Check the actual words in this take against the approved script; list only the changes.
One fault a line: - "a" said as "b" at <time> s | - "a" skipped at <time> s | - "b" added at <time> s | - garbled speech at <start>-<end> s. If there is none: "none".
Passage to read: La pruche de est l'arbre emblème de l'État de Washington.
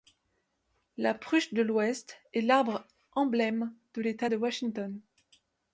- "l'ouest" added at 1.6 s